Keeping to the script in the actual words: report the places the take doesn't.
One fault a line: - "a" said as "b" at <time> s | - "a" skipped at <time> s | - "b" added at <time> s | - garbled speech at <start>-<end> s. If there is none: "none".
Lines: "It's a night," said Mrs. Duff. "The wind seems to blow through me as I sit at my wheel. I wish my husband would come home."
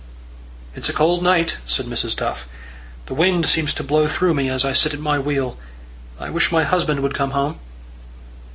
- "cold" added at 0.9 s